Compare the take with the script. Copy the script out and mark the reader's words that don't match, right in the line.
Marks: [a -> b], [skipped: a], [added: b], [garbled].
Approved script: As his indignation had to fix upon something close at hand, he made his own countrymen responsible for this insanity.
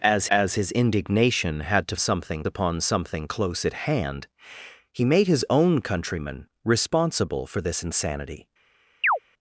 As [added: as] his indignation had to [fix -> something] upon something close at hand, he made his own countrymen responsible for this insanity.